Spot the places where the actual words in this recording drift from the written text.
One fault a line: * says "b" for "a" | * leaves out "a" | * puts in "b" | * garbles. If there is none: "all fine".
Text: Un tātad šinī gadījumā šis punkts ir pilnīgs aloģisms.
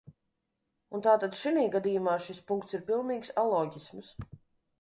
all fine